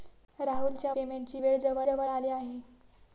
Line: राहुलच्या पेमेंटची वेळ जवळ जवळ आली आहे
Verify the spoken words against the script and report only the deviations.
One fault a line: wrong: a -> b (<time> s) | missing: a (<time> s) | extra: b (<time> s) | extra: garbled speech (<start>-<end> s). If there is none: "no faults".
no faults